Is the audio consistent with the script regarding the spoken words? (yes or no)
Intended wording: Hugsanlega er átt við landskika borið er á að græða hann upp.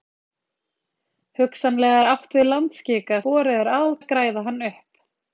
yes